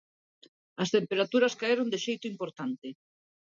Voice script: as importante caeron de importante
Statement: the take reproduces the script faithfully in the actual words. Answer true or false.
false